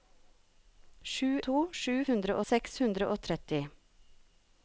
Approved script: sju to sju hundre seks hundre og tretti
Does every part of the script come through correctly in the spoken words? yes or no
yes